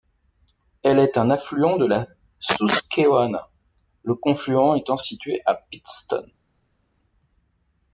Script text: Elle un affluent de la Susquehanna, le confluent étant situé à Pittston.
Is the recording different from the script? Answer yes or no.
yes